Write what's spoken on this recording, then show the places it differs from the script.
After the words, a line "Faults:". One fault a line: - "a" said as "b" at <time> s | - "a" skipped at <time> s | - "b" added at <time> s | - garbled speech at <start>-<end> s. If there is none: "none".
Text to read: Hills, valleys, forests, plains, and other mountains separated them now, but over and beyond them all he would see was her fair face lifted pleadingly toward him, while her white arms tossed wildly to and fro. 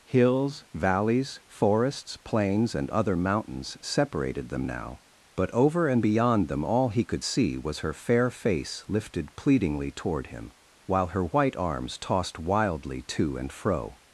Hills, valleys, forests, plains, and other mountains separated them now, but over and beyond them all he could see was her fair face lifted pleadingly toward him, while her white arms tossed wildly to and fro.
Faults:
- "would" said as "could" at 7.0 s